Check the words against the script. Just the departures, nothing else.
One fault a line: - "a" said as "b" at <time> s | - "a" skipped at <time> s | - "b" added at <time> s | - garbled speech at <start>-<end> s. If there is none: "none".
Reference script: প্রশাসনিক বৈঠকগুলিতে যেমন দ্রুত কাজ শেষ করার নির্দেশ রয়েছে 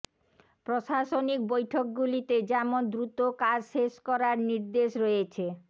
none